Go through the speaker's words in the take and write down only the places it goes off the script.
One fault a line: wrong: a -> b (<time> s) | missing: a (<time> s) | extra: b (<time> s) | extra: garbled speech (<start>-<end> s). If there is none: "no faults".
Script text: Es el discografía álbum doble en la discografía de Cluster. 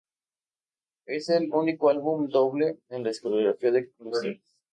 wrong: discografía -> único (1.5 s)